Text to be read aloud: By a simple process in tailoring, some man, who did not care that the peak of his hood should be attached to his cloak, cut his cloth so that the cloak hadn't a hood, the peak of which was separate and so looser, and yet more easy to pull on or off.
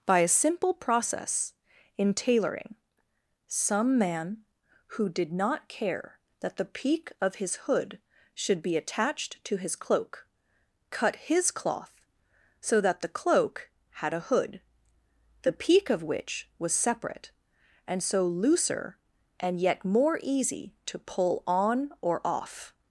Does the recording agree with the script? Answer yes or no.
no